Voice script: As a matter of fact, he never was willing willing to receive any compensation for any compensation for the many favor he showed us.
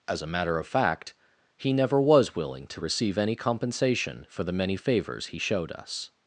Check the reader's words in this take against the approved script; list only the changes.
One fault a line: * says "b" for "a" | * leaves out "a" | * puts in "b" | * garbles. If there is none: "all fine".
* leaves out "willing"
* leaves out "any compensation for"
* says "favors" for "favor"